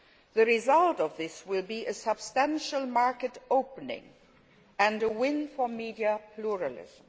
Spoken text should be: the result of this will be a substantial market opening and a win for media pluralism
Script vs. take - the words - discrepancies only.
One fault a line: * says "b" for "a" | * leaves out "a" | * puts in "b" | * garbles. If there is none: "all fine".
all fine